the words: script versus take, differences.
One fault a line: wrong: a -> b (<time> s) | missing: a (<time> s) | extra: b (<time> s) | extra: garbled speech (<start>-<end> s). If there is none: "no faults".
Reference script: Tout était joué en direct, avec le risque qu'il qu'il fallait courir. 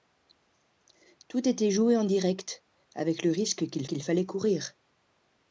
no faults